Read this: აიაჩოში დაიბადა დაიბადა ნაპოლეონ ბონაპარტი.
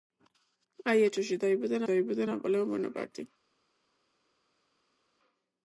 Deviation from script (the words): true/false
false